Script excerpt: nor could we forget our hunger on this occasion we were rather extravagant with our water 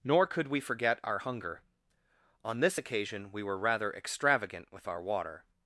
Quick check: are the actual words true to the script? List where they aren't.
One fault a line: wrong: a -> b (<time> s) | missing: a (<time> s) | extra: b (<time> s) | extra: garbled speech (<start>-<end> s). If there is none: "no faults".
no faults